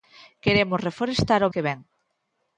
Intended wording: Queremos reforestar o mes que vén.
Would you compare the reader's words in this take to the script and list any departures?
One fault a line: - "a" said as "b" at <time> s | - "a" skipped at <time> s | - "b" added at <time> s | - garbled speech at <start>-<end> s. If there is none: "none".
- "mes" skipped at 1.5 s